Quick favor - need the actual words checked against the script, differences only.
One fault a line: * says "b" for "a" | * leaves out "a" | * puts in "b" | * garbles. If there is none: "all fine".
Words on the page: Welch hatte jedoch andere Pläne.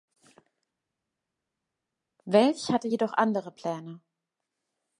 all fine